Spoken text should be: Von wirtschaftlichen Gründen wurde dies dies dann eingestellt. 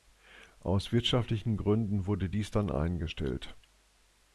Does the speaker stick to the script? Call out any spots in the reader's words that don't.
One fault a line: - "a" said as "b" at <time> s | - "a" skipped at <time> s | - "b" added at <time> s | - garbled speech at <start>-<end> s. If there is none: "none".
- "Von" said as "Aus" at 0.6 s
- "dies" skipped at 2.5 s